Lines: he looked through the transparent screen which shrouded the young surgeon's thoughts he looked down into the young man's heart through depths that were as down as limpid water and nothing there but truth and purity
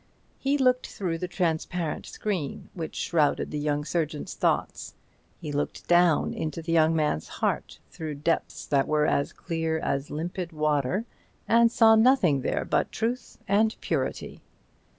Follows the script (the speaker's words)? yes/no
no